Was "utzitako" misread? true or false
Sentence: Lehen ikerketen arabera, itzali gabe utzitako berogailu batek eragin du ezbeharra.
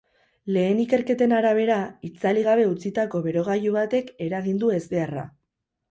false